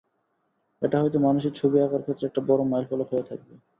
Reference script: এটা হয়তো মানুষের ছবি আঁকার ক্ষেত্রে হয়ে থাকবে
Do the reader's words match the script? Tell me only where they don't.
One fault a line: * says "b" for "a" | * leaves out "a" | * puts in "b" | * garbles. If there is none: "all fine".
* puts in "একটা বড় মাইলফলক"